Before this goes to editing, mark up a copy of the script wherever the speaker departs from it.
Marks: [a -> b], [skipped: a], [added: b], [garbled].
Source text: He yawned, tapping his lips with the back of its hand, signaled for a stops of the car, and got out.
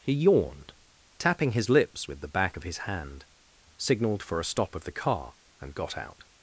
He yawned, tapping his lips with the back of [its -> his] hand, signaled for a [stops -> stop] of the car, and got out.